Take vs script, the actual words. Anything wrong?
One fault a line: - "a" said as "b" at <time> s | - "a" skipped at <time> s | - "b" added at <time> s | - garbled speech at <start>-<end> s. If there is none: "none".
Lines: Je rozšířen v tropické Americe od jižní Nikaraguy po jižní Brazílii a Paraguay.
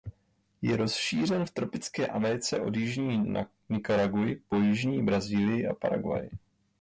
none